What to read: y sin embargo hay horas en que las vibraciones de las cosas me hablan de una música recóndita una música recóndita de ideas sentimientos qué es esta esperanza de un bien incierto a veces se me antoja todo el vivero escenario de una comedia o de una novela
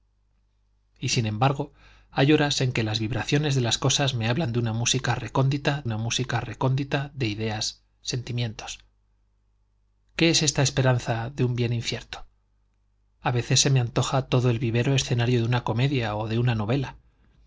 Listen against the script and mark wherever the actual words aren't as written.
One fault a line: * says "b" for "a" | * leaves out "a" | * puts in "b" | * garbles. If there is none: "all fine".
all fine